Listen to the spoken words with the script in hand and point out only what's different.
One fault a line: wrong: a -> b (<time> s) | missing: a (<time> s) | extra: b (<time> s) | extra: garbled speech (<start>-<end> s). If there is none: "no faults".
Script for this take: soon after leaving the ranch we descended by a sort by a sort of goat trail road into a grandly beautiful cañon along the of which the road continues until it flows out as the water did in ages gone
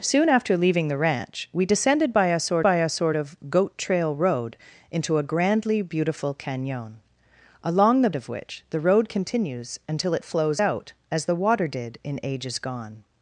no faults